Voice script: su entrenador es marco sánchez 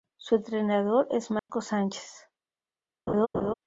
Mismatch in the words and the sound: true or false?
true